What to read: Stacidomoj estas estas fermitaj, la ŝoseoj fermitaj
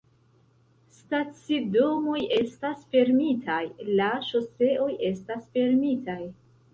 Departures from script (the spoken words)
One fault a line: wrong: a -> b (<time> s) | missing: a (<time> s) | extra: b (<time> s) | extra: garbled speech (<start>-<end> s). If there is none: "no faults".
missing: estas (2.9 s)
extra: estas (5.1 s)